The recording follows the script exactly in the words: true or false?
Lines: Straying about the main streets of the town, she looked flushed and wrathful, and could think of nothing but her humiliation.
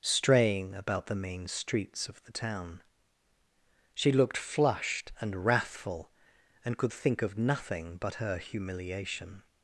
true